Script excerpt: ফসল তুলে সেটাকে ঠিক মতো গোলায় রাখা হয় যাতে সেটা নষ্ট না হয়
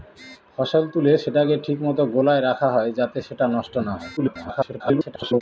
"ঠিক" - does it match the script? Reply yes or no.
yes